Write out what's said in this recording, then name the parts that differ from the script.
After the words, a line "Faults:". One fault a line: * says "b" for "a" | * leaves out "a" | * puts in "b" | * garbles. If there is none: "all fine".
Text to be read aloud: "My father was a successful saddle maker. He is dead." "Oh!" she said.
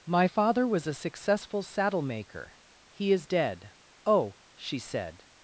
"My father was a successful saddle maker. He is dead." "Oh!" she said.
Faults:
all fine